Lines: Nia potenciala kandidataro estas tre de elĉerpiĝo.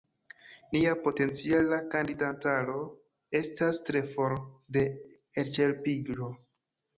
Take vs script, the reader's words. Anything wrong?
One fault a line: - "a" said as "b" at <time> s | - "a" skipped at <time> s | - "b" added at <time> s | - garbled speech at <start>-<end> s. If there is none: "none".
- "for" added at 4.1 s